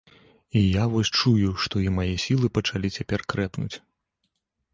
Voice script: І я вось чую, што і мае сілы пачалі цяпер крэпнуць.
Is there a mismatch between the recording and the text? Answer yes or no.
no